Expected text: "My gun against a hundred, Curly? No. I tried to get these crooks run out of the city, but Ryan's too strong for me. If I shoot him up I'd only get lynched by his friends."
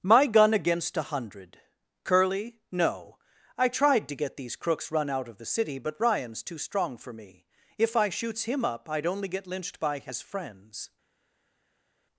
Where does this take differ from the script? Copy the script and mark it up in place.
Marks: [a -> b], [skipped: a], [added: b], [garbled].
"My gun against a hundred, Curly? No. I tried to get these crooks run out of the city, but Ryan's too strong for me. If I [shoot -> shoots] him up I'd only get lynched by his friends."